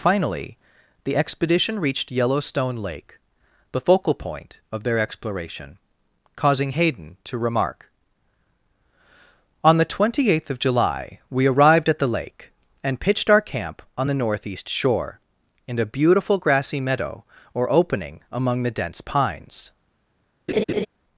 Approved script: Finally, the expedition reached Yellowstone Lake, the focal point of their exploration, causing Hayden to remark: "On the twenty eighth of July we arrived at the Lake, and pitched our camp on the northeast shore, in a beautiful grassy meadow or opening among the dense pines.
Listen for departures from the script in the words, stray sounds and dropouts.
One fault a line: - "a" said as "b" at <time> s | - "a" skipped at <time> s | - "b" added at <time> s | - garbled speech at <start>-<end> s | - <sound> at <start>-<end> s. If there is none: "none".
- laugh at 20.5-20.9 s